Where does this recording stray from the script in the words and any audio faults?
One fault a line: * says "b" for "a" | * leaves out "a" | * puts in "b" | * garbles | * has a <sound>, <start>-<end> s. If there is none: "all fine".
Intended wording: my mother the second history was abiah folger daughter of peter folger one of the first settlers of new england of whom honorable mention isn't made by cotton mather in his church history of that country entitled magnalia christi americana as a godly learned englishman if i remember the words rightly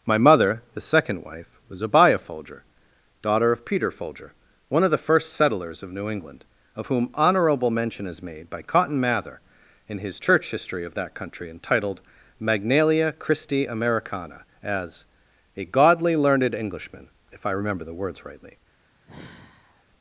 * says "wife" for "history"
* says "is" for "isn't"
* has a sigh, 19.0-19.9 s